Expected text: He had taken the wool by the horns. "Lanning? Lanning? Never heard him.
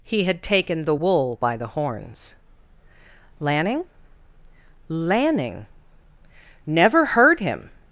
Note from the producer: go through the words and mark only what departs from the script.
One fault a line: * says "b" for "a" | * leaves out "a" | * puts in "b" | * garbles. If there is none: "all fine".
all fine